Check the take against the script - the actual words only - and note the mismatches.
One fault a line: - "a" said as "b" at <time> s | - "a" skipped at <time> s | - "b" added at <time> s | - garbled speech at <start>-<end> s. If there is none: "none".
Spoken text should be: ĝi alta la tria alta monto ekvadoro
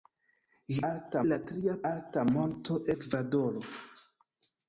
none